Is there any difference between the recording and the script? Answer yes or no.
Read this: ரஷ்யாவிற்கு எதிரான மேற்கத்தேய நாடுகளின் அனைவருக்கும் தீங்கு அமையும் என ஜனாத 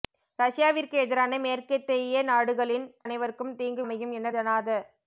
no